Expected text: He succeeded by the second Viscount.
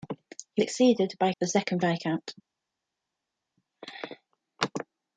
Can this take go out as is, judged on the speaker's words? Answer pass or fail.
pass